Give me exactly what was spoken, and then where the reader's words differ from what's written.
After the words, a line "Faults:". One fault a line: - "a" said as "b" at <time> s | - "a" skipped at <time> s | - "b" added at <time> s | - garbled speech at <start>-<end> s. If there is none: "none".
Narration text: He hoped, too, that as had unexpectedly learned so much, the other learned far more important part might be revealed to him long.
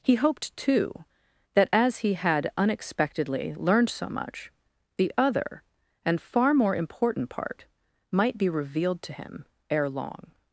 He hoped, too, that as he had unexpectedly learned so much, the other and far more important part might be revealed to him ere long.
Faults:
- "he" added at 2.0 s
- "learned" said as "and" at 6.0 s
- "ere" added at 9.7 s